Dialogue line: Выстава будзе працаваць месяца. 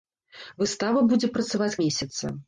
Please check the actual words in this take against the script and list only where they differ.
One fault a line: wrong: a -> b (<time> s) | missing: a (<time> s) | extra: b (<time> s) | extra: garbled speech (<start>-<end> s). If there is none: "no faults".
no faults